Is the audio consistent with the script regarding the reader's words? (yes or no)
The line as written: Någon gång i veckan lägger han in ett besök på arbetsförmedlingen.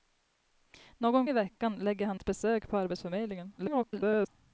no